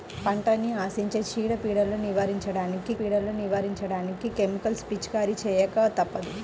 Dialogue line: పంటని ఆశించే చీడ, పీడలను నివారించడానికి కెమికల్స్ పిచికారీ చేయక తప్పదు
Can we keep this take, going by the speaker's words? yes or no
no